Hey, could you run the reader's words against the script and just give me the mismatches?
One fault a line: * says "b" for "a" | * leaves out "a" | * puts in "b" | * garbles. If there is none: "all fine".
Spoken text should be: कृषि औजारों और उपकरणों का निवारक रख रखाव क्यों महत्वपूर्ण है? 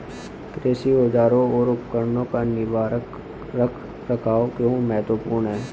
all fine